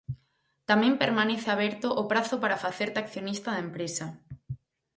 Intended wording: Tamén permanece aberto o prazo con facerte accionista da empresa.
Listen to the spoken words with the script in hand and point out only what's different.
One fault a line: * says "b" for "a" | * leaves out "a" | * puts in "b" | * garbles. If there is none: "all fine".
* says "para" for "con"